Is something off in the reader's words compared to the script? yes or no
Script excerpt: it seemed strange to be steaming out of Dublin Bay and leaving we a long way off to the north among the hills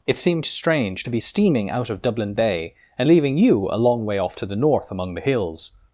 yes